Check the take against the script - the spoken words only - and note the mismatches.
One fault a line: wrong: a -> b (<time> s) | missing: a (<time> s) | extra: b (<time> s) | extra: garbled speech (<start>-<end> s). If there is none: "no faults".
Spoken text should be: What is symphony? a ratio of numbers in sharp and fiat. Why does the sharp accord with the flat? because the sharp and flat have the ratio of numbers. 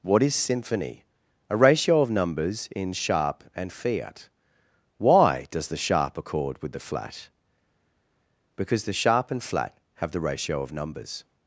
no faults